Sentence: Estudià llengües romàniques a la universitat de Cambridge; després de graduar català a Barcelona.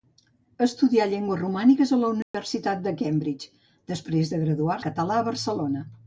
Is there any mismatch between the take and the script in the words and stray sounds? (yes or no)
yes